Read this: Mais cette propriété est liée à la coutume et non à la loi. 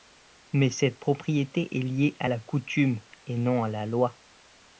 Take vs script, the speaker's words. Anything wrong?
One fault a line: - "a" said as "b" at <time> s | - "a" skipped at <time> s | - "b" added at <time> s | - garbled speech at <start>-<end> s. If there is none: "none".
none